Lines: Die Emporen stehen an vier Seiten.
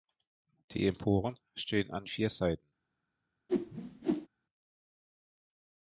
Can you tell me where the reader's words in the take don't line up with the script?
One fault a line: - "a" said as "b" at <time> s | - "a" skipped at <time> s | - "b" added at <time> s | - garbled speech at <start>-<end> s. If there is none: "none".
none